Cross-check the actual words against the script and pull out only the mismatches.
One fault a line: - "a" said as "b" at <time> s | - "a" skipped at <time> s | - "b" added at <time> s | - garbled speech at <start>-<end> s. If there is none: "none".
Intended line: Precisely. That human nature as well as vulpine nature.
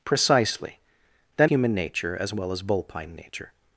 none